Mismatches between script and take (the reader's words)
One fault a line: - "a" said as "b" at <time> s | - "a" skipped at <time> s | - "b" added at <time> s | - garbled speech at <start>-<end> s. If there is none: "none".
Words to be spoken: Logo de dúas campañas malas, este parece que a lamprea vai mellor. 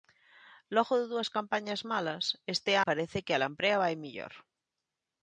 none